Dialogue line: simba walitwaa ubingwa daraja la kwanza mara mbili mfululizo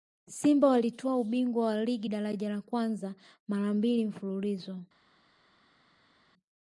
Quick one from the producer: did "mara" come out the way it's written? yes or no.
yes